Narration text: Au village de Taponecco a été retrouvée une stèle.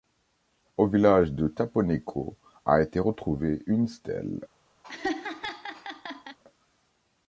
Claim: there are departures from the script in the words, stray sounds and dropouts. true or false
true